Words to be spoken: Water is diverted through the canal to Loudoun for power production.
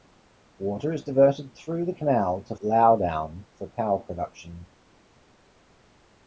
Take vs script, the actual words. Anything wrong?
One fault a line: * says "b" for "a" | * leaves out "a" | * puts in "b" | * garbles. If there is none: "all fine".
all fine